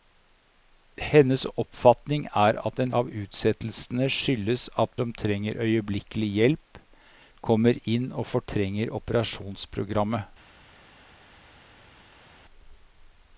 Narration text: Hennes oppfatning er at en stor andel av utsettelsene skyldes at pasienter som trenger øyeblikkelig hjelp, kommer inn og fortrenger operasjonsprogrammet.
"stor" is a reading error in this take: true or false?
true